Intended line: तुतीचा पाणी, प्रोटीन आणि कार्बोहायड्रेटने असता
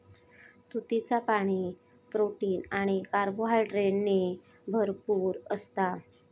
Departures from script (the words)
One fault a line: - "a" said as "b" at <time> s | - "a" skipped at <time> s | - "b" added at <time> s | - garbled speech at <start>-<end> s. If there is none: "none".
- "भरपूर" added at 4.7 s